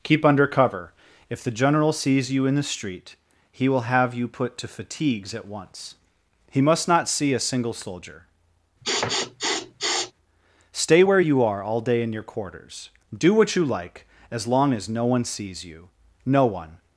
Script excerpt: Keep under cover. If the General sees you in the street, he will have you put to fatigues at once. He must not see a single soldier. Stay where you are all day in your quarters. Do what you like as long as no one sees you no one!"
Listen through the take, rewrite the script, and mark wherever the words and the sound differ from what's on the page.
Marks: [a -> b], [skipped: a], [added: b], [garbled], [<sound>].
Keep under cover. If the General sees you in the street, he will have you put to fatigues at once. He must not see a single soldier. [sniff] Stay where you are all day in your quarters. Do what you like as long as no one sees you no one!"